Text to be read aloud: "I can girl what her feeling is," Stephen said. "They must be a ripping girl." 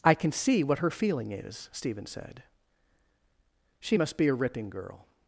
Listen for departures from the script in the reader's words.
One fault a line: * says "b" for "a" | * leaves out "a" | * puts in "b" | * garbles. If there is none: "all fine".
* says "see" for "girl"
* says "She" for "They"